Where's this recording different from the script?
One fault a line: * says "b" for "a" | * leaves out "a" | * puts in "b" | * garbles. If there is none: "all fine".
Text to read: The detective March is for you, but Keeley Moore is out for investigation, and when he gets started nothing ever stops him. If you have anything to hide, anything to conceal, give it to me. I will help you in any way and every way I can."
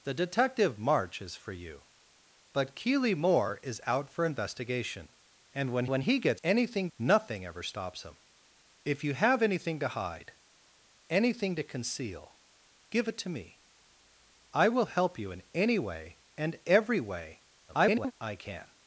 * puts in "when"
* says "anything" for "started"
* garbles